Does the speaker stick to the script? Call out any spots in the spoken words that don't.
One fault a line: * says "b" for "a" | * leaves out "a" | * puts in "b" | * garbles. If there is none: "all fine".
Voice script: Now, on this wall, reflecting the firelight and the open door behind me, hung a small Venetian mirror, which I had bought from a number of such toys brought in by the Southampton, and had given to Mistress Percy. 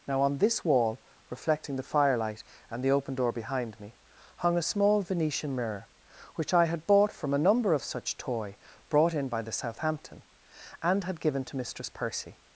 * says "toy" for "toys"